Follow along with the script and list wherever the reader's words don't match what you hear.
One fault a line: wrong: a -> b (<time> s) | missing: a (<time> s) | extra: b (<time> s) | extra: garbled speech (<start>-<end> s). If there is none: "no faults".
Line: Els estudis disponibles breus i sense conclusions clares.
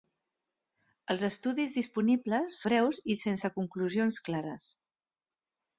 no faults